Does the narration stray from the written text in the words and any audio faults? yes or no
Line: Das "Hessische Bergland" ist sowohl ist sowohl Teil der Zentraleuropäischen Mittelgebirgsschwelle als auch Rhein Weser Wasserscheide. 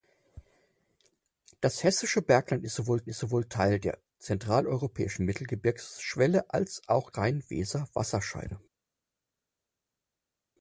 no